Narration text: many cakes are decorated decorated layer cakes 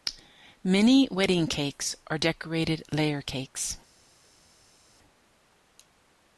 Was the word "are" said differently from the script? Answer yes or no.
no